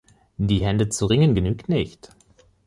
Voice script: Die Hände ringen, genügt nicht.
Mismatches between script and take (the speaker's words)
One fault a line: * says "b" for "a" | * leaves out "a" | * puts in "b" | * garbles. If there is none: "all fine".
* puts in "zu"